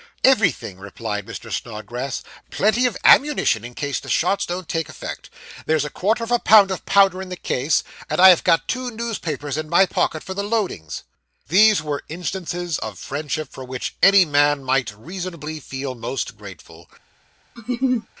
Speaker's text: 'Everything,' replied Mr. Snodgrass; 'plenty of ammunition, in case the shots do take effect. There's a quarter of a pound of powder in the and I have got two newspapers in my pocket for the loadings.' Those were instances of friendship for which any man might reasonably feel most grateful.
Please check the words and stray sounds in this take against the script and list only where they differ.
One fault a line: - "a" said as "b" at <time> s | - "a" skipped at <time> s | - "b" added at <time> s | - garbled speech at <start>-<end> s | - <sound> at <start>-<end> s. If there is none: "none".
- "do" said as "don't" at 4.5 s
- "case" added at 7.4 s
- "Those" said as "These" at 11.5 s
- laugh at 17.6-18.1 s